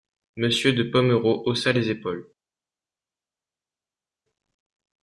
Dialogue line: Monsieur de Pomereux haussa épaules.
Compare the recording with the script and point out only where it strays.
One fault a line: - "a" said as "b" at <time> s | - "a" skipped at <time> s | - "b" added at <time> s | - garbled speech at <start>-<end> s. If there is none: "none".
- "les" added at 1.7 s